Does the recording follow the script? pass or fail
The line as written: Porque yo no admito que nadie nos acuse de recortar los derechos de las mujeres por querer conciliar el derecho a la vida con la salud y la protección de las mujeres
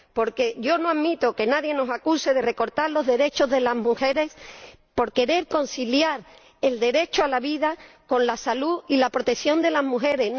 pass